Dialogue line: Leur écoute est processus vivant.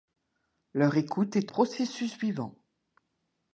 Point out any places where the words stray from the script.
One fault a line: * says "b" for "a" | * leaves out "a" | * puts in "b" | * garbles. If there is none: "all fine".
all fine